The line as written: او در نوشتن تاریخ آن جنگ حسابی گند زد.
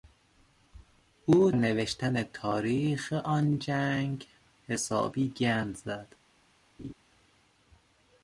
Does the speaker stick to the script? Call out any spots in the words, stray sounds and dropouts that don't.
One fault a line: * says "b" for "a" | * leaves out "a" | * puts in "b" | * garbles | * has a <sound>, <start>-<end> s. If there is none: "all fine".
* leaves out "در"
* has a laugh, 6.8-6.9 s